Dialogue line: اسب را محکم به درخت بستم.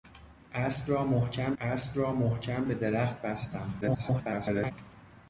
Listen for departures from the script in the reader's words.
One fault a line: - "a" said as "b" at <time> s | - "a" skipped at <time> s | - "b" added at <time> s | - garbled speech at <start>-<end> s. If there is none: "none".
- "اسب را محکم" added at 1.6 s
- garbled speech at 3.8-4.7 s